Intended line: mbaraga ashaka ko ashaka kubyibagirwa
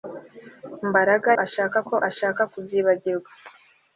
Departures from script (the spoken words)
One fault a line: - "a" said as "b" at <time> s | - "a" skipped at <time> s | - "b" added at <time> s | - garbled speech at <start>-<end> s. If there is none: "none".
none